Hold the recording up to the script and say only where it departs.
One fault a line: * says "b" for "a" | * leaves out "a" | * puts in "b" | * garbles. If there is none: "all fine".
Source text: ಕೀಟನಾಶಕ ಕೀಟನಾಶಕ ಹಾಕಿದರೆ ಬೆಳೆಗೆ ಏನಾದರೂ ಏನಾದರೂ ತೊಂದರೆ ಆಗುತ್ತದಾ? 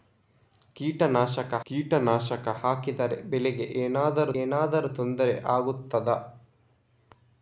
all fine